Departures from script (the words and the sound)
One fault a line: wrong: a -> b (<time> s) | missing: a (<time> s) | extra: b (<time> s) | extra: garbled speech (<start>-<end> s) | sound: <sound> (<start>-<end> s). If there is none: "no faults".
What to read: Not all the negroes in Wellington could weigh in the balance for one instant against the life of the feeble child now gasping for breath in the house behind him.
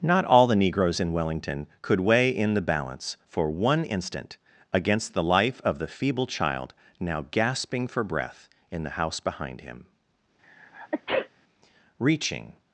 sound: sneeze (10.4-11.3 s)
extra: Reaching (12.0 s)